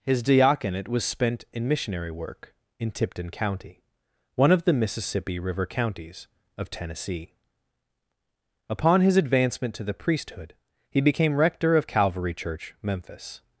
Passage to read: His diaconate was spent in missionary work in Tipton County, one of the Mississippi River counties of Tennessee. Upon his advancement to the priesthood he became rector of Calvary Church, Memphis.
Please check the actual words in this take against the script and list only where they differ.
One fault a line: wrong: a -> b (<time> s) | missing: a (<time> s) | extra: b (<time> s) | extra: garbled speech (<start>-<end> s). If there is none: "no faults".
no faults